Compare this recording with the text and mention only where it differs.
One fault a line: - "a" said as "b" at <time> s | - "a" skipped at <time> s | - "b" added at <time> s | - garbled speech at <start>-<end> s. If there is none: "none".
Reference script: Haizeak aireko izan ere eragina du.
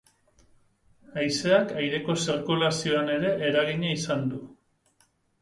- "izan" said as "zirkulazioan" at 2.2 s
- "izan" added at 4.0 s